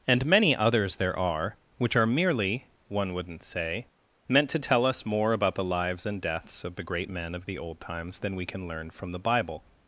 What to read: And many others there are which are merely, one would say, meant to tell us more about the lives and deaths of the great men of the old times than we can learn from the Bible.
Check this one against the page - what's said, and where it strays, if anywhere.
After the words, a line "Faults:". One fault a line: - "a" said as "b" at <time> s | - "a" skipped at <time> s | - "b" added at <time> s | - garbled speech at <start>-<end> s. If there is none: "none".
And many others there are which are merely, one wouldn't say, meant to tell us more about the lives and deaths of the great men of the old times than we can learn from the Bible.
Faults:
- "would" said as "wouldn't" at 3.1 s